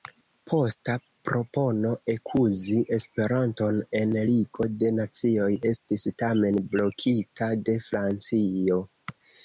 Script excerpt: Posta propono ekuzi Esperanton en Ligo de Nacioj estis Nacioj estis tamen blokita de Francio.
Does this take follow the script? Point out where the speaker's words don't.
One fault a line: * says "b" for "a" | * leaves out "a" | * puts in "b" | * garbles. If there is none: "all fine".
* leaves out "Nacioj estis"